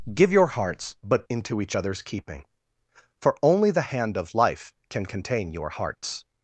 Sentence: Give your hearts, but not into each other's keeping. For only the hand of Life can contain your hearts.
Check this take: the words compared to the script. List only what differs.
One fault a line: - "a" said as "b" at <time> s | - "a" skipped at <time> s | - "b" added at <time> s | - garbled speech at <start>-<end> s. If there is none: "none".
- "not" skipped at 1.3 s